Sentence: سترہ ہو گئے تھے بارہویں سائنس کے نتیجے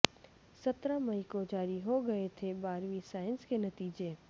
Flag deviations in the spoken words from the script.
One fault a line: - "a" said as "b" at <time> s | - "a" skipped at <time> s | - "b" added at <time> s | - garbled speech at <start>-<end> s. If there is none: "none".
- "مئی کو جاری" added at 1.0 s